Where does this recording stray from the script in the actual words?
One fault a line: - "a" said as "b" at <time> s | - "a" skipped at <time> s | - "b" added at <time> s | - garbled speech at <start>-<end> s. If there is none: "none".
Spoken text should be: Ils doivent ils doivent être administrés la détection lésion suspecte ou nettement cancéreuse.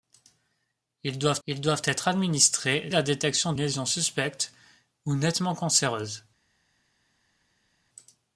none